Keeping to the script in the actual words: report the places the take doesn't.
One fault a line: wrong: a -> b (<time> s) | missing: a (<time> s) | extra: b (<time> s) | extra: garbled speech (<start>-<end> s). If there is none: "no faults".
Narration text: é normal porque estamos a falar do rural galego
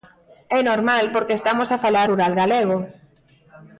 missing: do (2.1 s)